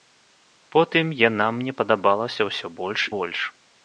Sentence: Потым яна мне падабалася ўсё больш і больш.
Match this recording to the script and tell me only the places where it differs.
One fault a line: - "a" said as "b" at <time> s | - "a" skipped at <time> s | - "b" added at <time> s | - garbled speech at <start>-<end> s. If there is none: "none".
- "і" skipped at 3.0 s